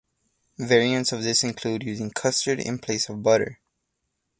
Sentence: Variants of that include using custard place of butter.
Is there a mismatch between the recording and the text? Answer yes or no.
yes